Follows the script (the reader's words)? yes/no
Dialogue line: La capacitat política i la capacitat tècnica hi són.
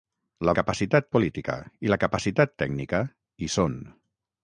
yes